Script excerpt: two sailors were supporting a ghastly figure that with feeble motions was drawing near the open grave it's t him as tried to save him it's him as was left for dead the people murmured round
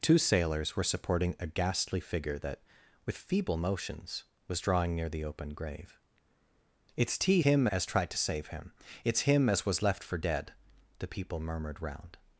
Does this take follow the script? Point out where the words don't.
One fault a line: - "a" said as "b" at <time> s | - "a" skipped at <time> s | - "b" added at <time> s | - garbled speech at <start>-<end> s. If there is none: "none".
none